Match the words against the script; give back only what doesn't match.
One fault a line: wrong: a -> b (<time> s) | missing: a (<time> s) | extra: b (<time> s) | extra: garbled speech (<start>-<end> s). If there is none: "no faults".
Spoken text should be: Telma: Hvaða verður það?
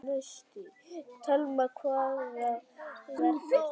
no faults